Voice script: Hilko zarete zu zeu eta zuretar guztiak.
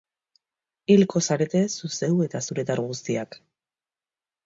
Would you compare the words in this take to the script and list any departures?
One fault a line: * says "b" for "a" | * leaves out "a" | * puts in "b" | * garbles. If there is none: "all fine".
all fine